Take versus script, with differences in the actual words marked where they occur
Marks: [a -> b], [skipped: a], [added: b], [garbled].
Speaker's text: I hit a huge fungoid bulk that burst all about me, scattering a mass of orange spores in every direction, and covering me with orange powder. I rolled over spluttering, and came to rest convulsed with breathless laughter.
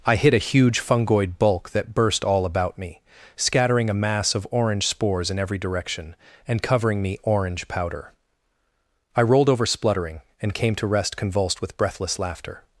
I hit a huge fungoid bulk that burst all about me, scattering a mass of orange spores in every direction, and covering me [skipped: with] orange powder. I rolled over spluttering, and came to rest convulsed with breathless laughter.